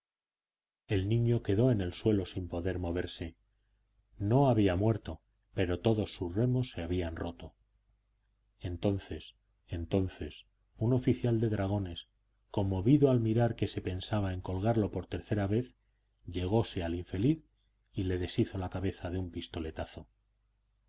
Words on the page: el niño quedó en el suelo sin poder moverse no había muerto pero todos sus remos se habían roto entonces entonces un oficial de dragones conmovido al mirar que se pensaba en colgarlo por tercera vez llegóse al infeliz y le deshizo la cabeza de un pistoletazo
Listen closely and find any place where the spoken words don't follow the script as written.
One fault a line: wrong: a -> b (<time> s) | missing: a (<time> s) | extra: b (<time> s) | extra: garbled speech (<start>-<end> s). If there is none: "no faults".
no faults